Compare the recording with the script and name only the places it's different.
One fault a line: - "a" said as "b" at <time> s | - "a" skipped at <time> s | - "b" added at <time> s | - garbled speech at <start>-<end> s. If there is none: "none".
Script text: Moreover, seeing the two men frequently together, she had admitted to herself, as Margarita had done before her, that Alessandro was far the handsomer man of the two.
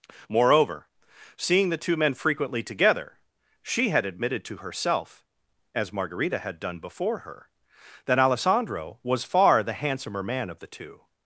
none